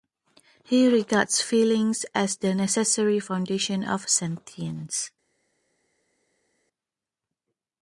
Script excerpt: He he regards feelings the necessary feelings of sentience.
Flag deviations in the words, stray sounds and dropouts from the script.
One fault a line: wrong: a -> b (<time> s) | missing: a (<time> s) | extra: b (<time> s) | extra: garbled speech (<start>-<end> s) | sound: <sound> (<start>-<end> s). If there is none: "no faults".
missing: he (0.9 s)
extra: as (2.1 s)
wrong: feelings -> foundation (3.2 s)